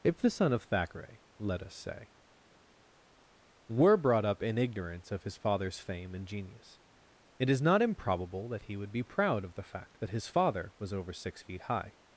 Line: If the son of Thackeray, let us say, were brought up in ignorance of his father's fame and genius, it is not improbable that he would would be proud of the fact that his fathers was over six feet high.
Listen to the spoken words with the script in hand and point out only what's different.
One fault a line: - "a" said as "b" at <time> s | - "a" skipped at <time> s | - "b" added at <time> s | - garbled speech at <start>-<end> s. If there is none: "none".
- "would" skipped at 8.9 s
- "fathers" said as "father" at 10.3 s